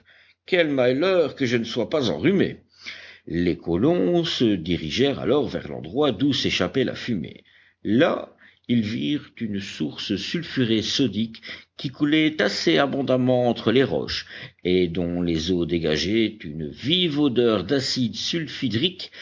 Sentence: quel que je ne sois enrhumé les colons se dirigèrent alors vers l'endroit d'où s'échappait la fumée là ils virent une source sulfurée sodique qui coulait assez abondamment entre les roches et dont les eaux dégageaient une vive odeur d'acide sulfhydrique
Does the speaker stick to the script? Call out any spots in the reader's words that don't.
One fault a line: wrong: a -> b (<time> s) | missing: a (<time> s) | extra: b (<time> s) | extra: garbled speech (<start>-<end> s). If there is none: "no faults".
extra: malheur (0.7 s)
extra: pas (1.9 s)